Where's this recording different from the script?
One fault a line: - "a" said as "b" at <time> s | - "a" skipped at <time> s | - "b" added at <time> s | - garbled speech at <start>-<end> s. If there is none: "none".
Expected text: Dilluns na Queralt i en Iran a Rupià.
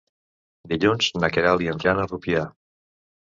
none